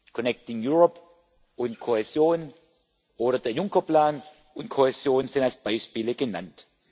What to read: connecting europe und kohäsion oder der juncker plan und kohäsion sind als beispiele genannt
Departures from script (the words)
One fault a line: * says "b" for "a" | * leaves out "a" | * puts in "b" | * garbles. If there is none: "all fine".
all fine